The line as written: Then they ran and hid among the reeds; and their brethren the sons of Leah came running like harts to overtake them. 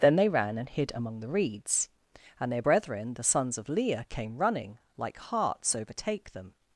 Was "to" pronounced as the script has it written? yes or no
no